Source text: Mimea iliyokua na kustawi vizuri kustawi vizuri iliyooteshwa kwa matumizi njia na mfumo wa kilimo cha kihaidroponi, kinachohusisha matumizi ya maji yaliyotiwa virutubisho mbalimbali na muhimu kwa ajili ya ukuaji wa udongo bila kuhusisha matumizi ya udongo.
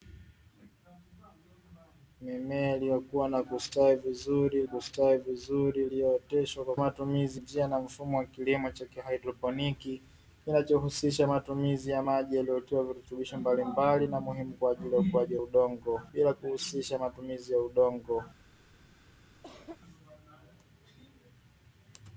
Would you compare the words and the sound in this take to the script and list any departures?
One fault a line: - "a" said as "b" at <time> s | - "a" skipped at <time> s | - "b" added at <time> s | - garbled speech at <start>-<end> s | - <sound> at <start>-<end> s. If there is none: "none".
- cough at 19.4-19.8 s